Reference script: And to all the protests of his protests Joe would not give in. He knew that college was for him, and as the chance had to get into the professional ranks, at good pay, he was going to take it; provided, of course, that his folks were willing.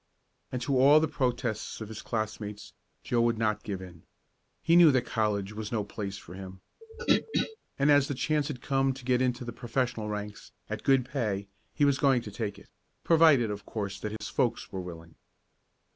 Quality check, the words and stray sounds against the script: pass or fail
fail